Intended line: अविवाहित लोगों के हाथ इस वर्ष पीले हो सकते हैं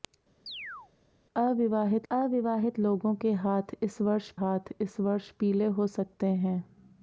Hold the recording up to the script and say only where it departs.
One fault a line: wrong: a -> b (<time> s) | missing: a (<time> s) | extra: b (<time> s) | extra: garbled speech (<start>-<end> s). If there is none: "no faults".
extra: अविवाहित (2.1 s)
extra: हाथ इस वर्ष (4.4 s)